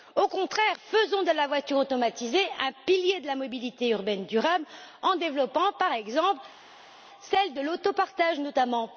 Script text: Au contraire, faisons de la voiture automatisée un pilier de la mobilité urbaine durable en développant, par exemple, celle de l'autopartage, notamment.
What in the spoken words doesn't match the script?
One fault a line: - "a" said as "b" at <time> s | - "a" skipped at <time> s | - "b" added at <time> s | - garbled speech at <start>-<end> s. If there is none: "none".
none